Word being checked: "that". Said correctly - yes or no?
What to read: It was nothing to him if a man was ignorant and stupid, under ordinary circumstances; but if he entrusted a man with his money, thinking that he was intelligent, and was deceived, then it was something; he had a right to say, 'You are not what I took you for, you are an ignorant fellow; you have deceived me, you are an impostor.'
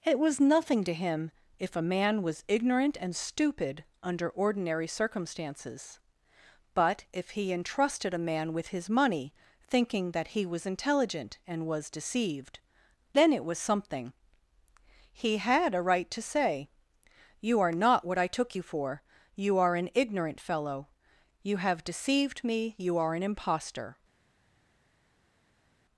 yes